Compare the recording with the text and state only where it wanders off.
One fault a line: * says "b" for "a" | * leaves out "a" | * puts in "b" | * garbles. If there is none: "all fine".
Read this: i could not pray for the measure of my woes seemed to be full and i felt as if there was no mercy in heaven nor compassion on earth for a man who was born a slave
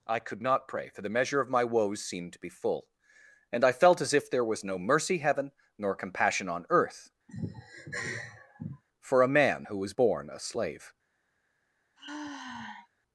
* leaves out "in"